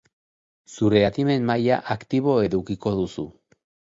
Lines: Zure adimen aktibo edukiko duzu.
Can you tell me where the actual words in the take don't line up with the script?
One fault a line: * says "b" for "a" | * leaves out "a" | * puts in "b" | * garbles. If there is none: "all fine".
* puts in "maila"